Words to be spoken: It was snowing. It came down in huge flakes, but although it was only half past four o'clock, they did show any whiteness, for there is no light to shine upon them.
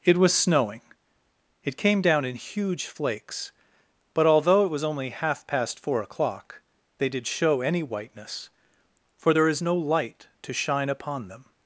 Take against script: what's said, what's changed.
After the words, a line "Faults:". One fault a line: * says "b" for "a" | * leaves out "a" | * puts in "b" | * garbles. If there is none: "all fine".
It was snowing. It came down in huge flakes, but although it was only half past four o'clock, they did show any whiteness, for there is no light to shine upon them.
Faults:
all fine